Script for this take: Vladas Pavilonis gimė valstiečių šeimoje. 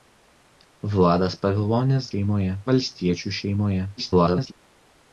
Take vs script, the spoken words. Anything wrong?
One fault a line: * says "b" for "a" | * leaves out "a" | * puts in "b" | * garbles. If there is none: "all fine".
* says "šeimoje" for "gimė"
* garbles